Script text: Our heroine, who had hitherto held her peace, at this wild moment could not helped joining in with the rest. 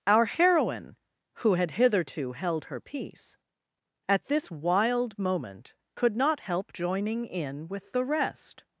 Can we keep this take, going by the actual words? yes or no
no